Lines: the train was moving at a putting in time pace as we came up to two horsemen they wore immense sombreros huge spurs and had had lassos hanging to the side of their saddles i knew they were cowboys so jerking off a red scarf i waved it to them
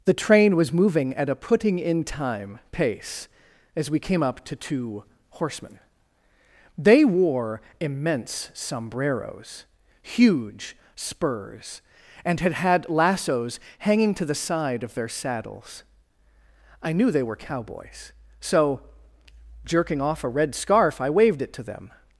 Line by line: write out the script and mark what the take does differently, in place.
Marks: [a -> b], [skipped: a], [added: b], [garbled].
the train was moving at a putting in time pace as we came up to two horsemen they wore immense sombreros huge spurs and had had lassos hanging to the side of their saddles i knew they were cowboys so jerking off a red scarf i waved it to them